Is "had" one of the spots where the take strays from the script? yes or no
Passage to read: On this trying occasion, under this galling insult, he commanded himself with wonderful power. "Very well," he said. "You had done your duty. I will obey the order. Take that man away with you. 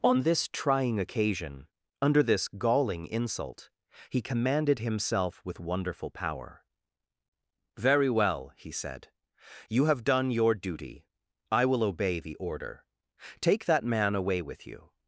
yes